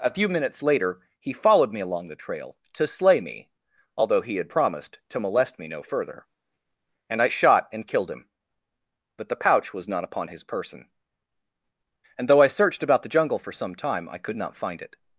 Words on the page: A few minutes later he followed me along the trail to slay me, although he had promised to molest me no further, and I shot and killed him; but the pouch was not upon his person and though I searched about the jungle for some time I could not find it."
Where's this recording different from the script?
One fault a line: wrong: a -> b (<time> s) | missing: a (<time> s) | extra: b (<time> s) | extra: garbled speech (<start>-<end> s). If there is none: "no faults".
no faults